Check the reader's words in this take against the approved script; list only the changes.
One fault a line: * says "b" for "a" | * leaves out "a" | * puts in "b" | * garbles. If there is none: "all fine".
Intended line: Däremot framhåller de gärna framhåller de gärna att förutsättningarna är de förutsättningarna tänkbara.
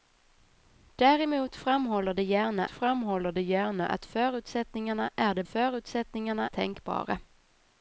all fine